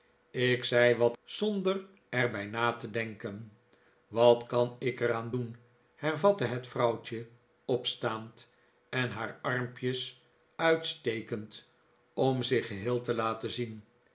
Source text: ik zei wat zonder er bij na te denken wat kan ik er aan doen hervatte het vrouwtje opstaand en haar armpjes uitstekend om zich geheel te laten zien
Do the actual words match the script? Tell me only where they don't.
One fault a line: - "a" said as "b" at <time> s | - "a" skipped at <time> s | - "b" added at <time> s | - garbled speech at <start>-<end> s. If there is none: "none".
none